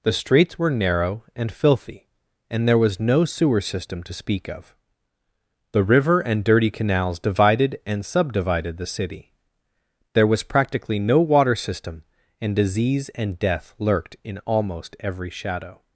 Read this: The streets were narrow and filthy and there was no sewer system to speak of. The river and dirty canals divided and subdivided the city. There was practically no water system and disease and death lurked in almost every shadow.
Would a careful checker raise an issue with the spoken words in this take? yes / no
no